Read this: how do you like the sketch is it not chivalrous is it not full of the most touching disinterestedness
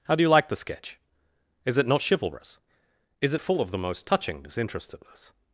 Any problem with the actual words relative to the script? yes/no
yes